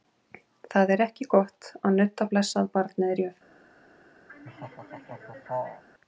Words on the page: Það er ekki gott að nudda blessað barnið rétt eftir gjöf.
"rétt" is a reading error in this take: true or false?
true